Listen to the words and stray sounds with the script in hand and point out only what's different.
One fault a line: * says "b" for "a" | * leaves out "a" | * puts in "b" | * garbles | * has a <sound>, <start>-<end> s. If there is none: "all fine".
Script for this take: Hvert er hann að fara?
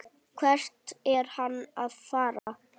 * has a dropout, 2.4-2.5 s